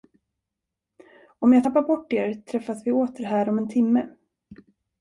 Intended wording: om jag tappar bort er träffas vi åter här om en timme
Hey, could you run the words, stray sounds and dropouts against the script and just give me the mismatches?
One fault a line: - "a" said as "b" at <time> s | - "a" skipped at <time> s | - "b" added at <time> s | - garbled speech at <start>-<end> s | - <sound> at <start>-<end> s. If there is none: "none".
none